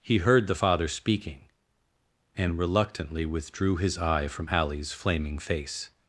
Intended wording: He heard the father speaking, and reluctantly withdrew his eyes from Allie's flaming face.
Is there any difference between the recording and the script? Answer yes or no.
yes